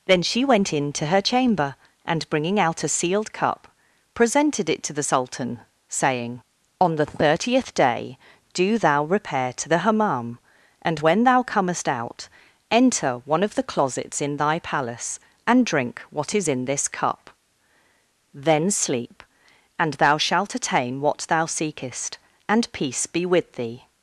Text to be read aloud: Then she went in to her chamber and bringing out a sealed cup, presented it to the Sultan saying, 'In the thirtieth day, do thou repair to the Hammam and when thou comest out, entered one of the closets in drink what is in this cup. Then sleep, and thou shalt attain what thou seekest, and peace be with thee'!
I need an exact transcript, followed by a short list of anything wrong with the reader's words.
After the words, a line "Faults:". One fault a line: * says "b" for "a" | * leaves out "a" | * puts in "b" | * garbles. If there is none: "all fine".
Then she went in to her chamber and bringing out a sealed cup, presented it to the Sultan saying, 'On the thirtieth day, do thou repair to the Hammam and when thou comest out, enter one of the closets in thy palace and drink what is in this cup. Then sleep, and thou shalt attain what thou seekest, and peace be with thee'!
Faults:
* says "On" for "In"
* says "enter" for "entered"
* puts in "thy palace and"